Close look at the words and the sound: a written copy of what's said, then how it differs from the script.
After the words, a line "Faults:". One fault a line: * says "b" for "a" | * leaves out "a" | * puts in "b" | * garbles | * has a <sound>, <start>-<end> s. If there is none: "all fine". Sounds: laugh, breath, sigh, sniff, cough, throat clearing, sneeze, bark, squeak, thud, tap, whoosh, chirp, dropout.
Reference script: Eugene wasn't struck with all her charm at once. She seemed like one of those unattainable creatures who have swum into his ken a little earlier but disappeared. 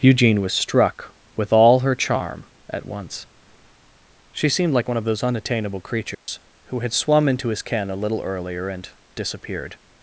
Eugene was struck with all her charm at once. She seemed like one of those unattainable creatures who had swum into his ken a little earlier and disappeared.
Faults:
* says "was" for "wasn't"
* has a dropout, 6.1-6.3 s
* says "had" for "have"
* says "and" for "but"